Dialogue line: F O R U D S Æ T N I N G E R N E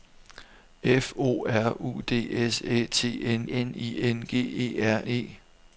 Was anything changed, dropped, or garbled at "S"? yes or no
no